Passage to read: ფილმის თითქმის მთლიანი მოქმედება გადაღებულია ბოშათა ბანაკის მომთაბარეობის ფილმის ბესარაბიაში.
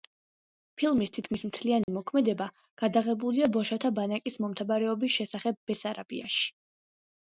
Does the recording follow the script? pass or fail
fail